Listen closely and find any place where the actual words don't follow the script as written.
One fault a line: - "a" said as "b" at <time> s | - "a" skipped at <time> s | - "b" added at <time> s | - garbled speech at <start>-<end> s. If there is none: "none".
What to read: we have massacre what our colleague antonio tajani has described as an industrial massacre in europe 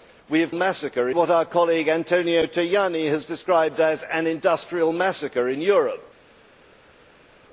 none